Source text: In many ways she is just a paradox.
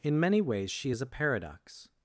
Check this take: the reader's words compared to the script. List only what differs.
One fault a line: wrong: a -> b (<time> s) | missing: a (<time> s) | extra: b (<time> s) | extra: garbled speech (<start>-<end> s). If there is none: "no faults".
missing: just (1.0 s)